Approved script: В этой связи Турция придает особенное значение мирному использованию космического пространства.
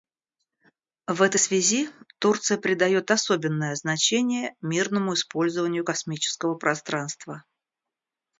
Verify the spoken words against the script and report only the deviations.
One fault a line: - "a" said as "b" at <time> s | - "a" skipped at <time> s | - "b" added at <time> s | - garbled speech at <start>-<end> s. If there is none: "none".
none